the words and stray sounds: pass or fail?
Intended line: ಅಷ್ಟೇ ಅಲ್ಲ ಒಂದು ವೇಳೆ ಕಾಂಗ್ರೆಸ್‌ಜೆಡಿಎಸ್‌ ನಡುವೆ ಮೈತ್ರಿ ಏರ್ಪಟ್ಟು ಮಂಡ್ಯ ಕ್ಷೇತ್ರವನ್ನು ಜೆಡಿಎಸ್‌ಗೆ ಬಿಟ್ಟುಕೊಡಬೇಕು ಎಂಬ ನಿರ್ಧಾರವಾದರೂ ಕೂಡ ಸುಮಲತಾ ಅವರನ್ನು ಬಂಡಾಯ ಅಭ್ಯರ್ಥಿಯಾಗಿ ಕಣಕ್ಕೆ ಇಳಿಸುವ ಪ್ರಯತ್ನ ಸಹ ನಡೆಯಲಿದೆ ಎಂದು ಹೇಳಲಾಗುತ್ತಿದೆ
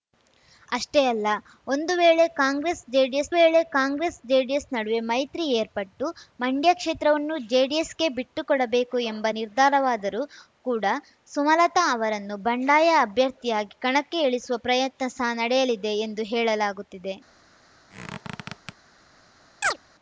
fail